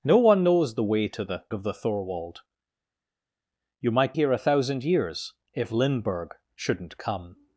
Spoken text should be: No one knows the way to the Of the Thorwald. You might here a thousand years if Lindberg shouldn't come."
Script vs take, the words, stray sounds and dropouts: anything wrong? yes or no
no